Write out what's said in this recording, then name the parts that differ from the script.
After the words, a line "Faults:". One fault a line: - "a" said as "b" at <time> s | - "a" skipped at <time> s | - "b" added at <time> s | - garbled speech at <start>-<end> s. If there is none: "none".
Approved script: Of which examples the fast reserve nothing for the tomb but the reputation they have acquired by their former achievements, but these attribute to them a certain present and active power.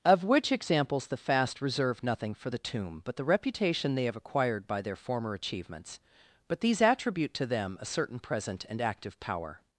Of which examples the fast reserve nothing for the tomb but the reputation they have acquired by their former achievements, but these attribute to them a certain present and active power.
Faults:
none